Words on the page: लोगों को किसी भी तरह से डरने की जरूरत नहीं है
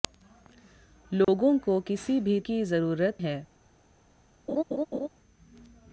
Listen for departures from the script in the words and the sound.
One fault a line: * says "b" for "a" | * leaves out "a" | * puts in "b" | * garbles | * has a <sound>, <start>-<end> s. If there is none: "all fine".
* has a dropout, 1.2-1.3 s
* leaves out "तरह से डरने"
* leaves out "नहीं"
* has a laugh, 4.5-5.1 s